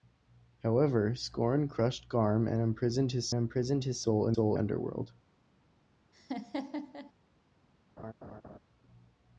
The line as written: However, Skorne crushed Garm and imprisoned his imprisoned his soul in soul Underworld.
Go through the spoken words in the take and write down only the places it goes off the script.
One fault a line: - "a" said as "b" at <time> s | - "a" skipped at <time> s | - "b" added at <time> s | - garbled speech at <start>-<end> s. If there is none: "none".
none